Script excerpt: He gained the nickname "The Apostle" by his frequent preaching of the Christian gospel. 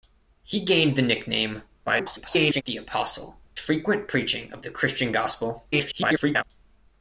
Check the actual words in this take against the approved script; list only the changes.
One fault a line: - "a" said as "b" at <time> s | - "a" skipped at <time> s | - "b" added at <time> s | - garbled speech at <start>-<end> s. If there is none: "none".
- garbled speech at 1.9-2.6 s
- "by his" skipped at 3.4 s
- garbled speech at 5.7-6.4 s